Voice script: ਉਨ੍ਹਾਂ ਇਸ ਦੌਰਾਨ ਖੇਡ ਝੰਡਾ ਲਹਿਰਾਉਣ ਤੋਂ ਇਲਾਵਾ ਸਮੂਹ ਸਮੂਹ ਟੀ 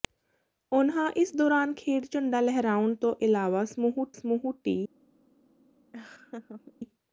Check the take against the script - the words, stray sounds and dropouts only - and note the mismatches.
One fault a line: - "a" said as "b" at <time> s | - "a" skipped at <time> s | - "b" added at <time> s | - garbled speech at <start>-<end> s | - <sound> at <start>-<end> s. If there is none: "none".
- laugh at 5.9-6.7 s